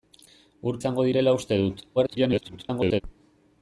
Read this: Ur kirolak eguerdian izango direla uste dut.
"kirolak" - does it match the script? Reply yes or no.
no